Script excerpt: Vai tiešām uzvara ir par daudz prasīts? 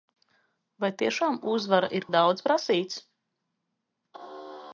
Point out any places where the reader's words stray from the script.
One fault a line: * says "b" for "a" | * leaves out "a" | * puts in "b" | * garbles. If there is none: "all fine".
* leaves out "par"